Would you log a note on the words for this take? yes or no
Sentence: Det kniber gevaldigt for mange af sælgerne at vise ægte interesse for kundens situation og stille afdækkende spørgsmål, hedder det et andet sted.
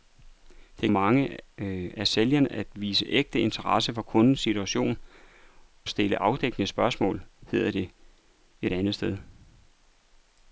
yes